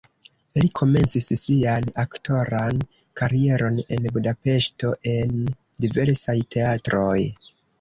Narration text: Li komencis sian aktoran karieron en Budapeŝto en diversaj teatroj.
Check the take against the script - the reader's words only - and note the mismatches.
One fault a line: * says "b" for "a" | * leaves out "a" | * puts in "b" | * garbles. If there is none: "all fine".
all fine